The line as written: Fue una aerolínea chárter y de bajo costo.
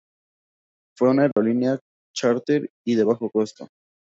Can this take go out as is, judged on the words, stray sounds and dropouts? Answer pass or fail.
fail